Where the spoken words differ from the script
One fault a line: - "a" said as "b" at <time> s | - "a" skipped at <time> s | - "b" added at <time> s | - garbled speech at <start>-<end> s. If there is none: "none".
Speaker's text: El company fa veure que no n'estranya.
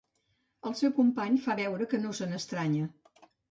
- "seu" added at 0.8 s
- "se" added at 2.2 s